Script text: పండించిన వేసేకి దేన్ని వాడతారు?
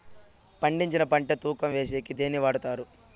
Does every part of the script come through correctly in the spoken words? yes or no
no